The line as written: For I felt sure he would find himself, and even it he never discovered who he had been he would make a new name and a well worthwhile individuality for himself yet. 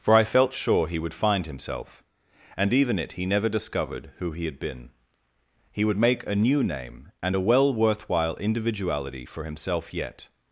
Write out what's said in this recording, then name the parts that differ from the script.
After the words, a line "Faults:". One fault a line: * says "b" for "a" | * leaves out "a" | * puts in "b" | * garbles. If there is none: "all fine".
For I felt sure he would find himself, and even it he never discovered who he had been he would make a new name and a well worthwhile individuality for himself yet.
Faults:
all fine